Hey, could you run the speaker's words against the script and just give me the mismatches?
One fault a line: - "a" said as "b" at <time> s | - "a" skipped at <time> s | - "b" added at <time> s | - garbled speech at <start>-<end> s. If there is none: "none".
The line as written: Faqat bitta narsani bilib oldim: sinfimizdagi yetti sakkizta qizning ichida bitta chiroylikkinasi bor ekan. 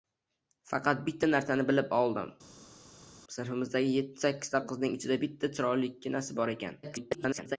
- garbled speech at 6.8-7.6 s